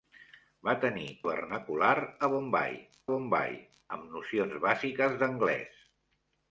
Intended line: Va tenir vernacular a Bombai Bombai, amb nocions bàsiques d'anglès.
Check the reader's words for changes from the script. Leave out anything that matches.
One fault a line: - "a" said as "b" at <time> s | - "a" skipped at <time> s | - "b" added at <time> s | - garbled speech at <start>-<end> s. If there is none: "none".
none